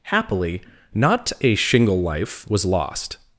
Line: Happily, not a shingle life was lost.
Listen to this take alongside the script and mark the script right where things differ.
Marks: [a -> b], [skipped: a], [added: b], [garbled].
Happily, not a shingle life was lost.